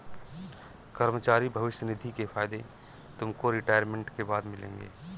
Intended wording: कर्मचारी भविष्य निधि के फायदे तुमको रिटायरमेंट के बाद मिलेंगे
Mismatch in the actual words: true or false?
false